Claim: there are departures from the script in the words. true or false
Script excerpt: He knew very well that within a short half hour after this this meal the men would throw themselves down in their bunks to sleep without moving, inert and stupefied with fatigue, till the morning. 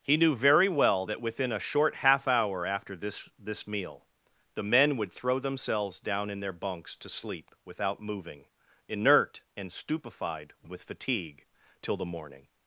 false